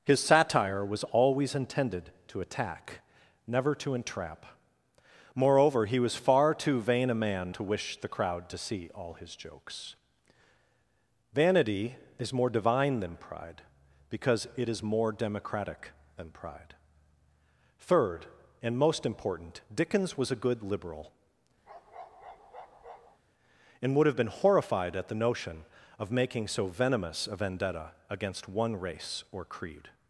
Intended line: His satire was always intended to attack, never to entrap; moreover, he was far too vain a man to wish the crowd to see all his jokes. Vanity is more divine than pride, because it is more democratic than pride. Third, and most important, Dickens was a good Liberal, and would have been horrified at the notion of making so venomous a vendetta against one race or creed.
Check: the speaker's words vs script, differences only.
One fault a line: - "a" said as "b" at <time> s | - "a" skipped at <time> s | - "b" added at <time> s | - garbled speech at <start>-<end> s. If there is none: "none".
none